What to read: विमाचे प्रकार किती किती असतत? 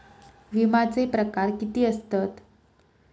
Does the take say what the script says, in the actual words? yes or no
no